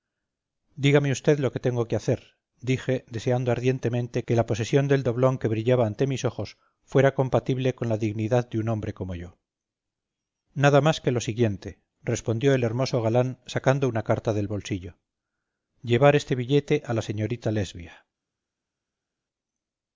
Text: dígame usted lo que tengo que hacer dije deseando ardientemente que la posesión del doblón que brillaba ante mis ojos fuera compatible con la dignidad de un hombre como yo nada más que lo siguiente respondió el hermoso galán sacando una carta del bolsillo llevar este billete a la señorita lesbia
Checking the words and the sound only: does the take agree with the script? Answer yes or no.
yes